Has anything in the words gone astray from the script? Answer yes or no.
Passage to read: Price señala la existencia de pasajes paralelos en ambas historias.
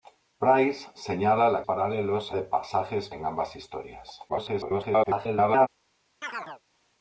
yes